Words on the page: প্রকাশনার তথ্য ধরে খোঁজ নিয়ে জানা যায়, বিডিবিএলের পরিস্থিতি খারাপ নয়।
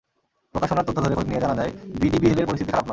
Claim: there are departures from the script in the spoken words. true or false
false